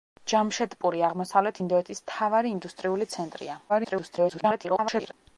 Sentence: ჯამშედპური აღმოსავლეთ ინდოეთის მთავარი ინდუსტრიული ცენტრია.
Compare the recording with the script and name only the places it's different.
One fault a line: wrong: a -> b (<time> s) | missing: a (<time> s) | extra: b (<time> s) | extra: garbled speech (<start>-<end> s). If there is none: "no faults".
extra: garbled speech (3.7-5.1 s)